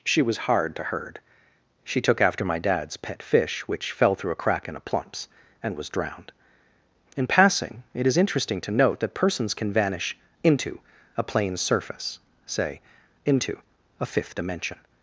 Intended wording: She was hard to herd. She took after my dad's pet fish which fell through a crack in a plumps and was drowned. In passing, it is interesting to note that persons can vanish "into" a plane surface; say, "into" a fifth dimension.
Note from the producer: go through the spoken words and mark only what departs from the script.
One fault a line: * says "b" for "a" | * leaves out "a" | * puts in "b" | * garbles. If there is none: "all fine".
all fine